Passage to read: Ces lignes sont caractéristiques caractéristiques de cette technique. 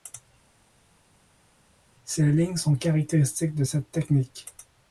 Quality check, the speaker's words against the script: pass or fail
fail